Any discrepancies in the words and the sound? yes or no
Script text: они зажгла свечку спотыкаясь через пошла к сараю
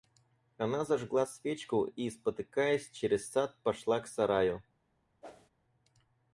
yes